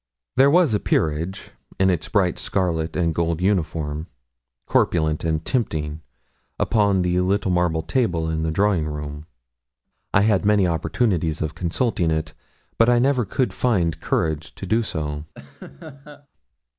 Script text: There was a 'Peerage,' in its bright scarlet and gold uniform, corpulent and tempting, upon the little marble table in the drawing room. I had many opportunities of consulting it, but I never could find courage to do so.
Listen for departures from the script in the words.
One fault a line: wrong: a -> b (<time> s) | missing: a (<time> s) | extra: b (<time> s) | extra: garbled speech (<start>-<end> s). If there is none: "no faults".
no faults